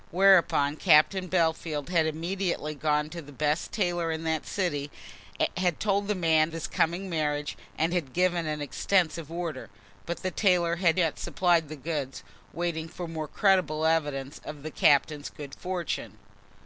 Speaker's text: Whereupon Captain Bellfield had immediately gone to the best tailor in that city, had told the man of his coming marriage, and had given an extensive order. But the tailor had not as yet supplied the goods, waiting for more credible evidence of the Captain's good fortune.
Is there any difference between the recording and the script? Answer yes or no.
yes